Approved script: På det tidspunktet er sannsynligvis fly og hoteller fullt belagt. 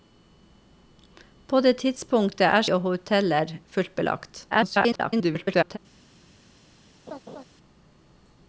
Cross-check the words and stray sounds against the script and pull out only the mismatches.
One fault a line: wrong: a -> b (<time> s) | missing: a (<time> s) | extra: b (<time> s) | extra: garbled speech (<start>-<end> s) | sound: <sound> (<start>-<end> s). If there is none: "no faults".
missing: sannsynligvis fly (2.6 s)
extra: garbled speech (4.5-5.8 s)
sound: laugh (7.1-7.4 s)